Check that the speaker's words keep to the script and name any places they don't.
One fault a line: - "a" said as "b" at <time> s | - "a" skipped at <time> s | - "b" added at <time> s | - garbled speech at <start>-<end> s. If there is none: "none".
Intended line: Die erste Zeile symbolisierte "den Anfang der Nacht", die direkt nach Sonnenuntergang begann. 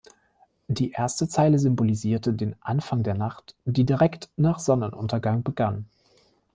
none